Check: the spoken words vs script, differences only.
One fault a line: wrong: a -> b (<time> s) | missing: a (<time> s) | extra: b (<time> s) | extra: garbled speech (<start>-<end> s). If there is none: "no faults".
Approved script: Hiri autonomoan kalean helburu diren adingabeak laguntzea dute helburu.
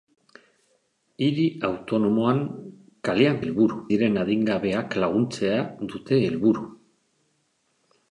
no faults